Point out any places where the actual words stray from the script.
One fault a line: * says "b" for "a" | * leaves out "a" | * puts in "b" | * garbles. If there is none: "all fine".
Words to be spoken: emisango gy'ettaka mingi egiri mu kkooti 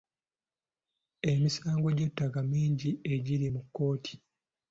all fine